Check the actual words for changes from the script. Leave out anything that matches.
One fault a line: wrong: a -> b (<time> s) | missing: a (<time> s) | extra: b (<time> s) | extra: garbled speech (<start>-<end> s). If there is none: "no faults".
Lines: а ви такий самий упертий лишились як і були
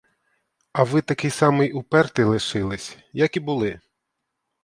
no faults